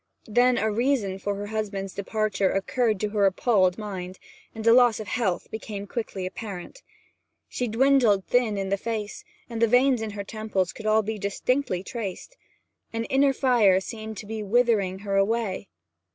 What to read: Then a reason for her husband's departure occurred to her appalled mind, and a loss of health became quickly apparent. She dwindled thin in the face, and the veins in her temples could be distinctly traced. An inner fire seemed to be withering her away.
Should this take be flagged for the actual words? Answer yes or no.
yes